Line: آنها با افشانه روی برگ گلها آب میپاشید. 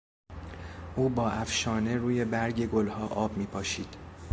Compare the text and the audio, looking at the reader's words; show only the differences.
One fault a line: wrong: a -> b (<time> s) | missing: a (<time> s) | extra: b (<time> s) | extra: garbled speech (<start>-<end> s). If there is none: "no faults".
wrong: آنها -> او (0.9 s)